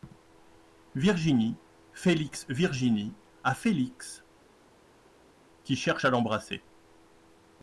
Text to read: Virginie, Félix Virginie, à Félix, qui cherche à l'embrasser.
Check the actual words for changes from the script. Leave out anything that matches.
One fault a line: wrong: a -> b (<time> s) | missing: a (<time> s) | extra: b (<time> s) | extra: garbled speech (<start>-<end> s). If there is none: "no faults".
no faults